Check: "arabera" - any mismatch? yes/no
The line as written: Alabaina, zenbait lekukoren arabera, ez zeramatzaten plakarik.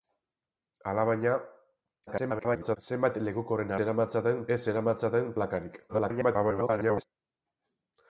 yes